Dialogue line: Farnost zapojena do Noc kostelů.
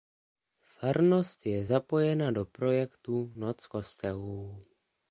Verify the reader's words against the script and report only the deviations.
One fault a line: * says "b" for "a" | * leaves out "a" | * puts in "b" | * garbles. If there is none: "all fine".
* puts in "je"
* puts in "projektu"